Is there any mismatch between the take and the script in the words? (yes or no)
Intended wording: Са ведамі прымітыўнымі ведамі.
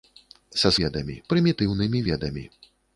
no